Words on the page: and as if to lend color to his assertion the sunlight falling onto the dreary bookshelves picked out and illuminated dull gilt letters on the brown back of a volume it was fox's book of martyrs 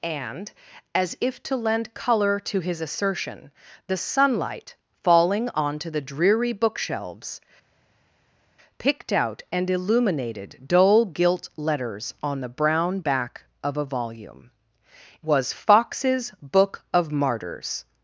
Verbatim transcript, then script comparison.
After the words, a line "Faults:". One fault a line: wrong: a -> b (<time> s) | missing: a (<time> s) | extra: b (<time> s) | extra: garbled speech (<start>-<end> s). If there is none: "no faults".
and as if to lend color to his assertion the sunlight falling onto the dreary bookshelves picked out and illuminated dull gilt letters on the brown back of a volume was fox's book of martyrs
Faults:
missing: it (14.5 s)